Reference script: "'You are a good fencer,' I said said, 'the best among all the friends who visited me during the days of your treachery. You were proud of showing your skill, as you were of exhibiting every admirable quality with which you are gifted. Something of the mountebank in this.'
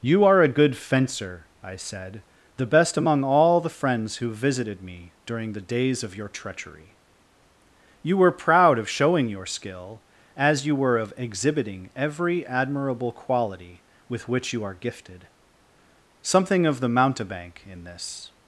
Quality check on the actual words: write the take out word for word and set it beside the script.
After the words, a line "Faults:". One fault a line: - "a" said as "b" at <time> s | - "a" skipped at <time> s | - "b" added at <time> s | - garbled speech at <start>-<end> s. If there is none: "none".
"'You are a good fencer,' I said, 'the best among all the friends who visited me during the days of your treachery. You were proud of showing your skill, as you were of exhibiting every admirable quality with which you are gifted. Something of the mountebank in this.'
Faults:
- "said" skipped at 2.2 s